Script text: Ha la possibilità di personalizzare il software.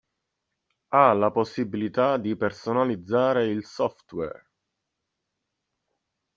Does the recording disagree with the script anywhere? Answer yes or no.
no